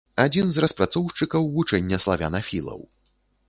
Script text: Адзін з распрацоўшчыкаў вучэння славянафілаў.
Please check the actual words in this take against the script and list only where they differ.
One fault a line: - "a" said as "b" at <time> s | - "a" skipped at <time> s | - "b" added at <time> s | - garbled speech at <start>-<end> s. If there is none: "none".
none